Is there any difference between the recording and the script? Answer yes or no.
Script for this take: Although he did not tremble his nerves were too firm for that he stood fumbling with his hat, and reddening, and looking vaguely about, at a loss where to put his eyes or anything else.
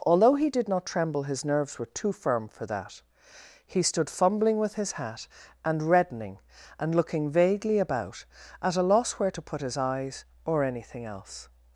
no